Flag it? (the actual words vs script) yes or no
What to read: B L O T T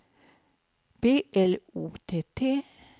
no